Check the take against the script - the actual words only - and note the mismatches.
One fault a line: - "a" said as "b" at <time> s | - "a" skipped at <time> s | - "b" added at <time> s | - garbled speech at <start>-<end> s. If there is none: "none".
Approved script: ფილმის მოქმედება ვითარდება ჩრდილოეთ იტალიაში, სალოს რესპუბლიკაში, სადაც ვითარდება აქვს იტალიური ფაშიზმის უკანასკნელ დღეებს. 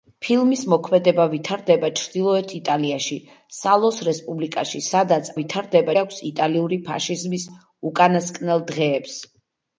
none